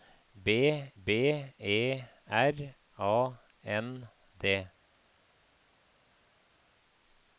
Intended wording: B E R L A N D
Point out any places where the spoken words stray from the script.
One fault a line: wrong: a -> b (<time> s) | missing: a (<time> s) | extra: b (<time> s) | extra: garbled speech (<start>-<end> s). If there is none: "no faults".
extra: b (1.0 s)
missing: L (2.8 s)